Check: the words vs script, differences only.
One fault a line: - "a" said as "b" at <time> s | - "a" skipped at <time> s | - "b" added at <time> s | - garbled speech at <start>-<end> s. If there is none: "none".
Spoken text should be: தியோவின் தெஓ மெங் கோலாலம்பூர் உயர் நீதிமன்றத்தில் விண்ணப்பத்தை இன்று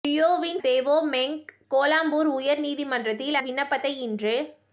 none